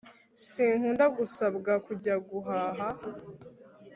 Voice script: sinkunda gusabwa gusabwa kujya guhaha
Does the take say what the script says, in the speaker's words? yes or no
no